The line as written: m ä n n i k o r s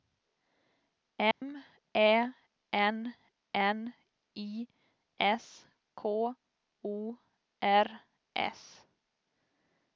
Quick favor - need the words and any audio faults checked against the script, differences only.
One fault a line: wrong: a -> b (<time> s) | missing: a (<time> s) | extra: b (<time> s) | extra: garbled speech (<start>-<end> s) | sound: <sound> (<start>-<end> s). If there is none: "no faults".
sound: dropout (1.3-1.4 s)
extra: s (5.2 s)